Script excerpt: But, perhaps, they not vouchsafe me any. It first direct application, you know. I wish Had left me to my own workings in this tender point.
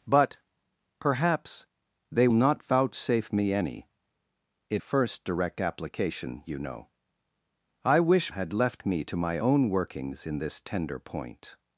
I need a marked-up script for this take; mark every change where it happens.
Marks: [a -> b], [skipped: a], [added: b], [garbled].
But, perhaps, they not vouchsafe me any. It first direct application, you know. I wish Had left me to my own workings in this tender point.